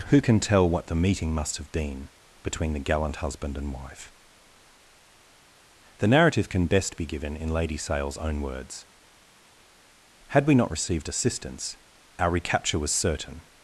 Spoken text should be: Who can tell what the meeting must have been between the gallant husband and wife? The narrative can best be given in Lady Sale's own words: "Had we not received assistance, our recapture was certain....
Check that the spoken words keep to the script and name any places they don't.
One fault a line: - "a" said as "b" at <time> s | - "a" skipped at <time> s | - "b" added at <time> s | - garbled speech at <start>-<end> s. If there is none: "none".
none